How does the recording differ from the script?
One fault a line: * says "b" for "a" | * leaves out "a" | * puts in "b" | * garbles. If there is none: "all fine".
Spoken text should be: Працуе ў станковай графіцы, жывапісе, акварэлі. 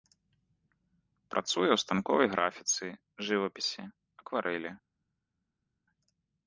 all fine